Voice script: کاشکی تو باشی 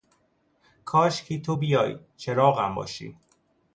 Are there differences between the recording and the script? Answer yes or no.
yes